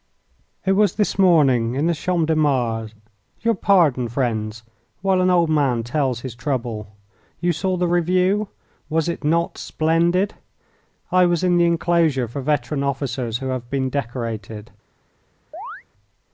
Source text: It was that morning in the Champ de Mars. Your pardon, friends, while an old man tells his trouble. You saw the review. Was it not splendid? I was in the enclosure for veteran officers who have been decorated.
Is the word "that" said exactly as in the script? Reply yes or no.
no